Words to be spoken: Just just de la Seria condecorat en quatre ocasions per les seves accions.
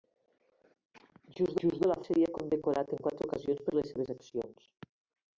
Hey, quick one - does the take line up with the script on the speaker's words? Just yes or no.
yes